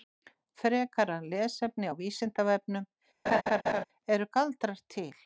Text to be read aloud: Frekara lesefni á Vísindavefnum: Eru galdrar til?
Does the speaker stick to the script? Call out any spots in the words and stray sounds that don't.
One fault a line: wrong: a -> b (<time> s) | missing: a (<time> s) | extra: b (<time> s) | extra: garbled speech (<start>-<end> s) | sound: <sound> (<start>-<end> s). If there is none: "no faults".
sound: laugh (3.3-3.8 s)